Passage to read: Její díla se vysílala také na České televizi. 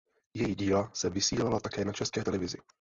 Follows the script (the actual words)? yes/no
yes